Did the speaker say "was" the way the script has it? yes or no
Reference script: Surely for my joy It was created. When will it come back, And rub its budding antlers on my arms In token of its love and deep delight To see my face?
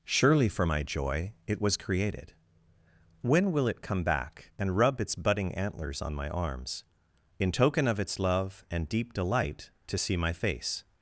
yes